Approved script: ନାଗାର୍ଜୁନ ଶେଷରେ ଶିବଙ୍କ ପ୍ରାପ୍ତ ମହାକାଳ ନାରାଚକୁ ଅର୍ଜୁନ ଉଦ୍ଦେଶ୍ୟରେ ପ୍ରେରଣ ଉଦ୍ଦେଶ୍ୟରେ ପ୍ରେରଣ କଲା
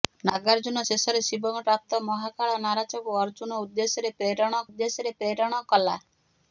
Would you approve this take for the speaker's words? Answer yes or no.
yes